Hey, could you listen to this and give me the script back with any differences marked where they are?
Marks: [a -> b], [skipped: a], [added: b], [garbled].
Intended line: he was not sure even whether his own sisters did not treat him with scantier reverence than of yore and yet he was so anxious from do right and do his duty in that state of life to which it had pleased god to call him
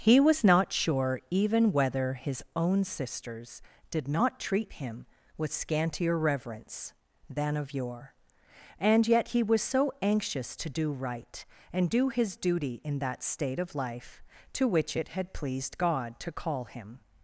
he was not sure even whether his own sisters did not treat him with scantier reverence than of yore and yet he was so anxious [from -> to] do right and do his duty in that state of life to which it had pleased god to call him